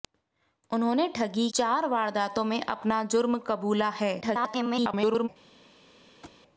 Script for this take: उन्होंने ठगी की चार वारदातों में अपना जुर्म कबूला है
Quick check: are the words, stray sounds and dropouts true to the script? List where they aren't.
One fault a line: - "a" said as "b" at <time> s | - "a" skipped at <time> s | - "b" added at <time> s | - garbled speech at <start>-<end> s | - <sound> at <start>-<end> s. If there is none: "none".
- "की" skipped at 1.5 s
- garbled speech at 4.2-5.3 s
- thud at 6.2-6.4 s